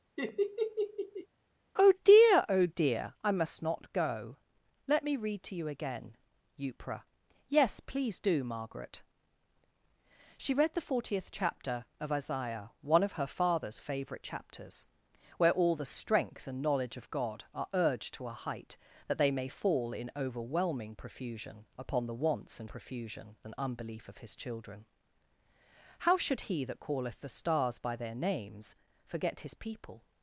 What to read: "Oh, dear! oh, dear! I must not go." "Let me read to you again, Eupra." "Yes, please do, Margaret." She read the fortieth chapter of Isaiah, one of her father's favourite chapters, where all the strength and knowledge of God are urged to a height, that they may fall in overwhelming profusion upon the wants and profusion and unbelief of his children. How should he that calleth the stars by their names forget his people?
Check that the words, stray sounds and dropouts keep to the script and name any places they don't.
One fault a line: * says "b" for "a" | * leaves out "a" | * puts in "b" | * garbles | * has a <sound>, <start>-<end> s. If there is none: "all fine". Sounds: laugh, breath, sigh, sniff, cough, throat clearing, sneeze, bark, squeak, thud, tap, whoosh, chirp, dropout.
* has a laugh, 0.2-1.3 s